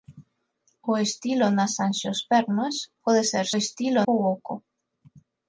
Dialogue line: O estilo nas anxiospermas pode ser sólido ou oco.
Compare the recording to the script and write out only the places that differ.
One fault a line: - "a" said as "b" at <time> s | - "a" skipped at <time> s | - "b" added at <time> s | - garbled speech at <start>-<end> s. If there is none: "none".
- "sólido" said as "estilo" at 3.6 s